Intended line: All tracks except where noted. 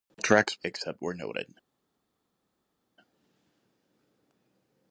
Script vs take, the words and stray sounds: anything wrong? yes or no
no